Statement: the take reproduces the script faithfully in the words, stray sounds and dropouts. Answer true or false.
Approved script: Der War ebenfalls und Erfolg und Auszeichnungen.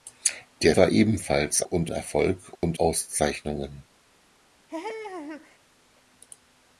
false